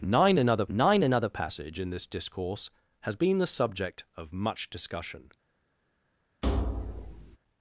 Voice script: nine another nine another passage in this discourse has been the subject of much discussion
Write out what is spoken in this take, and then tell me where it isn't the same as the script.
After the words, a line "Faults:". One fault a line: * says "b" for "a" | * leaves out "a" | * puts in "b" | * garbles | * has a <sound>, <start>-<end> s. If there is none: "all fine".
nine another nine another passage in this discourse has been the subject of much discussion
Faults:
* has a thud, 6.4-7.4 s